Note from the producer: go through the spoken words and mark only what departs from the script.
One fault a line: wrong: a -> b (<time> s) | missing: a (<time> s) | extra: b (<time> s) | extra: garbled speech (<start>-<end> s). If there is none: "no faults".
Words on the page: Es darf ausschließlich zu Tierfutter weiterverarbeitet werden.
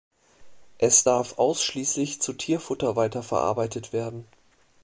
no faults